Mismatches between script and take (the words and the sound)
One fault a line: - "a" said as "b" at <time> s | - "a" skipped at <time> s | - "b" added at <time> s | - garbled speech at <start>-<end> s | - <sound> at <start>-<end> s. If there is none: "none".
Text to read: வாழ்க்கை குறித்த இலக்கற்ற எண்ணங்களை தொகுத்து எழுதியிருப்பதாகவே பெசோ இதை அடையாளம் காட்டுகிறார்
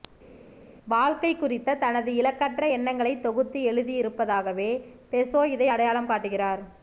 - "தனது" added at 1.8 s